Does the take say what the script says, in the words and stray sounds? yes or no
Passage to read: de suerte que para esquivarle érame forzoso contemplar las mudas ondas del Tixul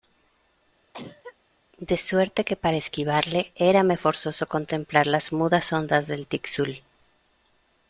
no